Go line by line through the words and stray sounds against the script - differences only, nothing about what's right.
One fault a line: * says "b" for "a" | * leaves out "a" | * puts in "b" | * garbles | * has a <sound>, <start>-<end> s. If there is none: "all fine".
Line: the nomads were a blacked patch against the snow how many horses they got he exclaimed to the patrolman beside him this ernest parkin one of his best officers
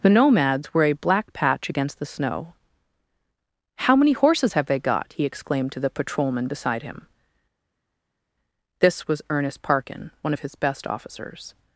* says "black" for "blacked"
* puts in "have"
* puts in "was"